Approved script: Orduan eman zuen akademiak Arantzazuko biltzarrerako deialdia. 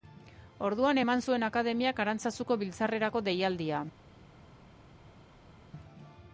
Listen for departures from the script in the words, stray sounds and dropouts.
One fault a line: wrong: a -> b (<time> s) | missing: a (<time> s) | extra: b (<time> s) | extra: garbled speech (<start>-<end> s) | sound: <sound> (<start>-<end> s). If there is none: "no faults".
no faults